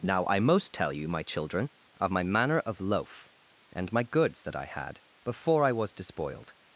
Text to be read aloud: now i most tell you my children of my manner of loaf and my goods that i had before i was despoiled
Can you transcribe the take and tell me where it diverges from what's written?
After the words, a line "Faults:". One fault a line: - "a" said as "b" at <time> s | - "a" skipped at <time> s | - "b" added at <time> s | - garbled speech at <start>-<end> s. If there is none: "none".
now i most tell you my children of my manner of loaf and my goods that i had before i was despoiled
Faults:
none